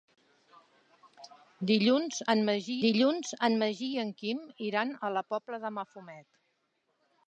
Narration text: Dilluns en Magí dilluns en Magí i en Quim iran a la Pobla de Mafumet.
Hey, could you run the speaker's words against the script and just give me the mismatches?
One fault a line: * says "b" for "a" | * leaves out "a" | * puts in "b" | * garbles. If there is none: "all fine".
all fine